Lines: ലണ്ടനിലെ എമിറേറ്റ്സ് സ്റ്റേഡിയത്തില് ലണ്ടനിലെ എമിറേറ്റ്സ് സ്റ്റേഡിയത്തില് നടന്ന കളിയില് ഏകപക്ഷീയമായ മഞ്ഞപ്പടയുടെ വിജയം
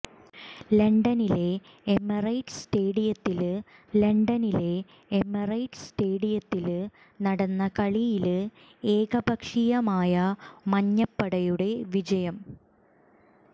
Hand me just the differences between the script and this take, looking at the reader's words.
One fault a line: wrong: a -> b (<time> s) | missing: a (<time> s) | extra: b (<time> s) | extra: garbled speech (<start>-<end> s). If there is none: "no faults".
no faults